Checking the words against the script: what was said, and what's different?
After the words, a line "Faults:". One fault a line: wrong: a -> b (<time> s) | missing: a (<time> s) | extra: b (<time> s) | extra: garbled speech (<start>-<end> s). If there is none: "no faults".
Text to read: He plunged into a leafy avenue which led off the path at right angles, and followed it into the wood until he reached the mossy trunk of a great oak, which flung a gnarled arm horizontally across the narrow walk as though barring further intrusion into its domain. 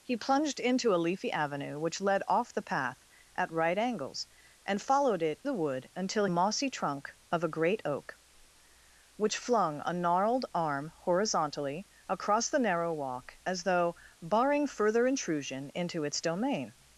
He plunged into a leafy avenue which led off the path at right angles, and followed it the wood until mossy trunk of a great oak, which flung a gnarled arm horizontally across the narrow walk as though barring further intrusion into its domain.
Faults:
missing: into (5.4 s)
missing: he reached the (6.3 s)